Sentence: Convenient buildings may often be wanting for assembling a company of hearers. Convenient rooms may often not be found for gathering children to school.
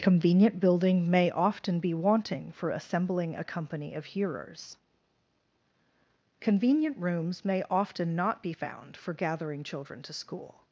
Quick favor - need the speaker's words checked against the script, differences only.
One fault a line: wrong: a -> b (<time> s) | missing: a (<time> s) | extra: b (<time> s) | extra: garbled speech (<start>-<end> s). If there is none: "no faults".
wrong: buildings -> building (0.6 s)